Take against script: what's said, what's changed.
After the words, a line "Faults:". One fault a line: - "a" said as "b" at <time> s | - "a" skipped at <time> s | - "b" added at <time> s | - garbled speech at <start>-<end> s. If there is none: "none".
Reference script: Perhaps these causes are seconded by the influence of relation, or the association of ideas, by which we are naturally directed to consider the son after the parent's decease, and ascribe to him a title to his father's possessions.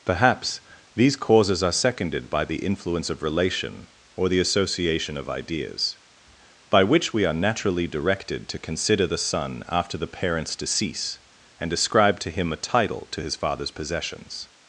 Perhaps these causes are seconded by the influence of relation, or the association of ideas, by which we are naturally directed to consider the son after the parent's decease, and ascribe to him a title to his father's possessions.
Faults:
none